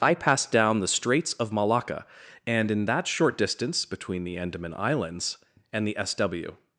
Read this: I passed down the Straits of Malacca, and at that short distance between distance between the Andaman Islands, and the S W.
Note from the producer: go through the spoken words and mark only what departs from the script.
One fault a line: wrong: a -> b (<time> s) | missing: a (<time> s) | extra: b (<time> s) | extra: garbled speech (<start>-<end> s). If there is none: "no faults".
wrong: at -> in (2.7 s)
missing: distance between (4.2 s)